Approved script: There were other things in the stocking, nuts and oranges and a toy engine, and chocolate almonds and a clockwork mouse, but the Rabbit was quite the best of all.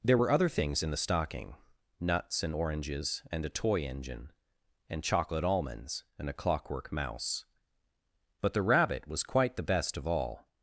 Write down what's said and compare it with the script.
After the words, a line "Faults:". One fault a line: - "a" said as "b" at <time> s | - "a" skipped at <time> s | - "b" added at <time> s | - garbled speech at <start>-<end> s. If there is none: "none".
There were other things in the stocking, nuts and oranges and a toy engine, and chocolate almonds and a clockwork mouse, but the Rabbit was quite the best of all.
Faults:
none